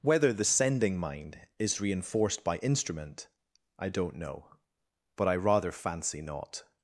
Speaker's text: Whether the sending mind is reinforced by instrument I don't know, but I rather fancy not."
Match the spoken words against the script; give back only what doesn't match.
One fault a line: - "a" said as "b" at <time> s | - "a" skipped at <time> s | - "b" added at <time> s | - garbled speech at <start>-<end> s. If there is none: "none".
none